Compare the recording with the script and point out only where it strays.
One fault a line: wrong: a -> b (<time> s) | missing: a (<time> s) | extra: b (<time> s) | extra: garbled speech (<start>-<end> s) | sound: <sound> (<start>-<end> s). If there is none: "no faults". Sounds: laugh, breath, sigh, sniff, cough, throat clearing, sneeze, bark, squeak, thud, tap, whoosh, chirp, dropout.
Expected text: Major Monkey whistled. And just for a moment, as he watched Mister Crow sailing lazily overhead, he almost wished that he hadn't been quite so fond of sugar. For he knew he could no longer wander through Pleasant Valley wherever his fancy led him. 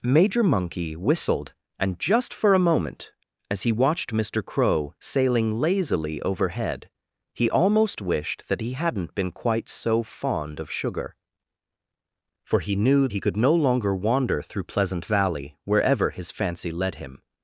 no faults